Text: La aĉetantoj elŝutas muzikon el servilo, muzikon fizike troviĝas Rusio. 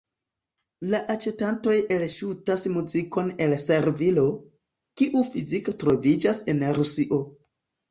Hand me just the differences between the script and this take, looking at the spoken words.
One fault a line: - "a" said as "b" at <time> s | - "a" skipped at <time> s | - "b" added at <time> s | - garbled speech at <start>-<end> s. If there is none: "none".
- "muzikon" said as "kiu" at 5.0 s
- "en" added at 6.6 s